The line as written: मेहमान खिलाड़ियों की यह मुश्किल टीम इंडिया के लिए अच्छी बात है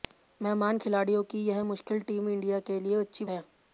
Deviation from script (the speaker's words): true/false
true